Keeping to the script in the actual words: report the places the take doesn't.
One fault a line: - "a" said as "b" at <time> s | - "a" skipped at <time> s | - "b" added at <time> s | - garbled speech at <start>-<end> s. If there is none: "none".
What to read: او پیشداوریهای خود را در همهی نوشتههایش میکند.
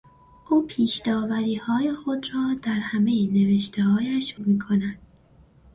none